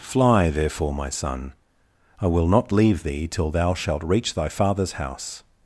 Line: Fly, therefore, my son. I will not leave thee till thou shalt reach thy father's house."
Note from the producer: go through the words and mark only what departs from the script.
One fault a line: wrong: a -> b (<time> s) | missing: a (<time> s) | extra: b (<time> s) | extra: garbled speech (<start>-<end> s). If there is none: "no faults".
no faults